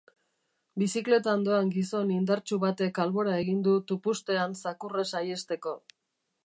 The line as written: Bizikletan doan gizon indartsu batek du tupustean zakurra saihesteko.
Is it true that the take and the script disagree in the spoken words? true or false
true